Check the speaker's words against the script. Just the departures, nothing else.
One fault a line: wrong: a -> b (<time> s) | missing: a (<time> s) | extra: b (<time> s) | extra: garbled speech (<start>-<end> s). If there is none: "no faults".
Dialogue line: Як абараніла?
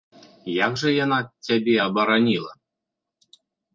extra: жа яна цябе (0.8 s)